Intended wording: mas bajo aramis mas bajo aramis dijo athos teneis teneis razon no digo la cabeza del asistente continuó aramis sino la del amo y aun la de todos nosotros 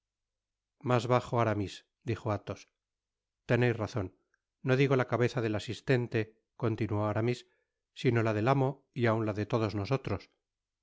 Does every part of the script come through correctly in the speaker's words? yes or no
no